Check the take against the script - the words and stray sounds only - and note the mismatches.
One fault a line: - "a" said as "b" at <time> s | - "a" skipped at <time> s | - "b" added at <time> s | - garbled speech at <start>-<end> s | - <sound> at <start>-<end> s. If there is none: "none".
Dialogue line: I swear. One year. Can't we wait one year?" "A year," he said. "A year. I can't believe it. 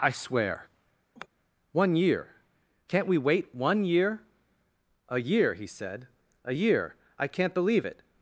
- sigh at 1.2-1.3 s